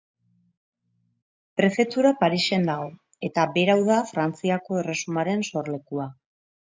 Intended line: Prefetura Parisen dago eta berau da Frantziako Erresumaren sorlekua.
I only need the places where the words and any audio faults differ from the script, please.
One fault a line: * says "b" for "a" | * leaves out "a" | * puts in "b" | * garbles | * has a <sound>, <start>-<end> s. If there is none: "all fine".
all fine